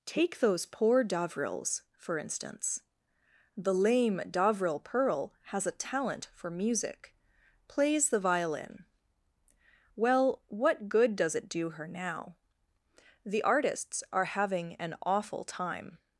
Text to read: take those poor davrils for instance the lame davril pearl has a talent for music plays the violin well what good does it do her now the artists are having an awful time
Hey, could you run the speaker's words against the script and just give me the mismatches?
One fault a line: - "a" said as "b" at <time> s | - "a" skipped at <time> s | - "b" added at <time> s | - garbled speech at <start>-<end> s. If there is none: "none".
none